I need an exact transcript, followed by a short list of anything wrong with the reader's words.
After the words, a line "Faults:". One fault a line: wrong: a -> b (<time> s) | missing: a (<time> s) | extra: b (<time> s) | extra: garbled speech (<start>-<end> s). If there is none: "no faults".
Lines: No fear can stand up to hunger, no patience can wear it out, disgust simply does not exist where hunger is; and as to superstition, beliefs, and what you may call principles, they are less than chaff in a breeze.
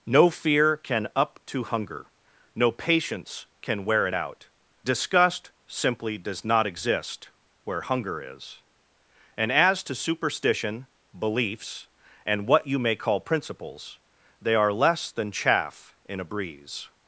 No fear can up to hunger, no patience can wear it out, disgust simply does not exist where hunger is; and as to superstition, beliefs, and what you may call principles, they are less than chaff in a breeze.
Faults:
missing: stand (1.1 s)